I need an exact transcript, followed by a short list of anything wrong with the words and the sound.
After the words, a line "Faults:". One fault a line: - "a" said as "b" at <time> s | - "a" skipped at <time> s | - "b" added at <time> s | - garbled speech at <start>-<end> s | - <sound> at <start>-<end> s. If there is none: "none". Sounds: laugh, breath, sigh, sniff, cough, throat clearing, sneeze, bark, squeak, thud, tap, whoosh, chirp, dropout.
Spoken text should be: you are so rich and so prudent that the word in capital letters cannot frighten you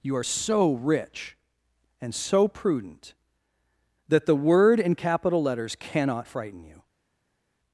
you are so rich and so prudent that the word in capital letters cannot frighten you
Faults:
none